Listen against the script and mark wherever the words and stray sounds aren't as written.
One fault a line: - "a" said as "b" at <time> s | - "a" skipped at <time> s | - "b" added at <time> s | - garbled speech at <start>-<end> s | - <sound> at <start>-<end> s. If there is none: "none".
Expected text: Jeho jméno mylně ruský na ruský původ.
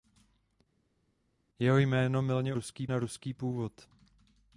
none